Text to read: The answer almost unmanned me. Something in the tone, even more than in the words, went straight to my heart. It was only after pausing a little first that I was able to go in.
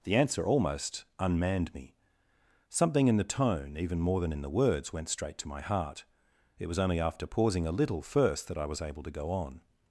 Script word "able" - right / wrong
right